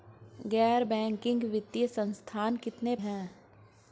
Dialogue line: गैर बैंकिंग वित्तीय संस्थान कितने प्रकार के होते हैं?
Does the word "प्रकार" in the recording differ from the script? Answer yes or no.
yes